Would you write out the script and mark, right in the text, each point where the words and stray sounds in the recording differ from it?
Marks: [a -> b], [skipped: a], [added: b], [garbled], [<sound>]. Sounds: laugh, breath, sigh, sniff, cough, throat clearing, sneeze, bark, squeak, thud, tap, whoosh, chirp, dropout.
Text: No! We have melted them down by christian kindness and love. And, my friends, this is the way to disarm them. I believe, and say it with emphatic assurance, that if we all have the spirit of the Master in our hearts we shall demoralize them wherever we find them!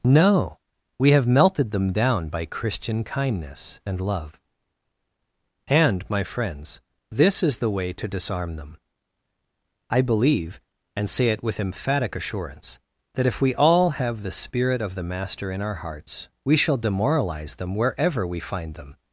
No! We have melted them down by christian kindness and love. And, my friends, this is the way to disarm them. I believe, and say it with emphatic assurance, that if we all have the spirit of the Master in our hearts we shall demoralize them wherever we find them!